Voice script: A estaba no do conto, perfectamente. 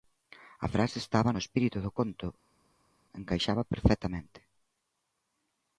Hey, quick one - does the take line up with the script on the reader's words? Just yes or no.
no